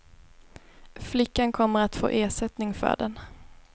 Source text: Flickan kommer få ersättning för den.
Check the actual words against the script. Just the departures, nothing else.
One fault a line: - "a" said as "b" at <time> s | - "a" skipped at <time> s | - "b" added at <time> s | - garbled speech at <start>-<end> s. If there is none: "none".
- "att" added at 1.8 s